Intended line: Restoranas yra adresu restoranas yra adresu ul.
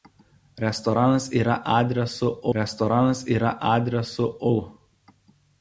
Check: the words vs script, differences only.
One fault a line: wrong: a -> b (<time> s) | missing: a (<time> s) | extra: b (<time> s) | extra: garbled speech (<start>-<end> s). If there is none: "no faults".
no faults